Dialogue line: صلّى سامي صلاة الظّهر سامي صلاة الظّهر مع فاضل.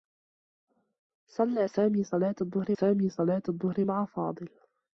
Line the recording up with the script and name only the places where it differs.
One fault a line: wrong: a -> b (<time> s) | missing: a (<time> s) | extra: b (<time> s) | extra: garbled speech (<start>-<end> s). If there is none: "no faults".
no faults